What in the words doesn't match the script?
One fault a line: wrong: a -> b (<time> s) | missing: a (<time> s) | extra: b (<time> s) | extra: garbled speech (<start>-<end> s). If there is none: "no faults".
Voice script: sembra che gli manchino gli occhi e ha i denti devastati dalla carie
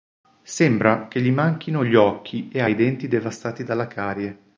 no faults